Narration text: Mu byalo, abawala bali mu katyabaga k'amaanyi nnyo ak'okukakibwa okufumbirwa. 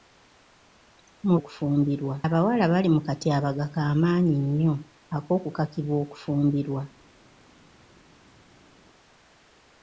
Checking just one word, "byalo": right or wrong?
wrong